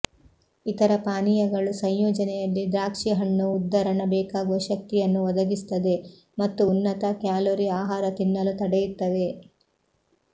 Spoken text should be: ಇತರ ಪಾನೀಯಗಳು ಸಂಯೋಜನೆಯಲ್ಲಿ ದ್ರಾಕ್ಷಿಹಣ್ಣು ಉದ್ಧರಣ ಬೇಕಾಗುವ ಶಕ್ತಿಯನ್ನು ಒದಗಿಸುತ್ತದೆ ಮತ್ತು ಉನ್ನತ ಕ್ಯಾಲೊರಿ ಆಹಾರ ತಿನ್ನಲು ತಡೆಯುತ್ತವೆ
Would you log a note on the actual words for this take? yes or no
no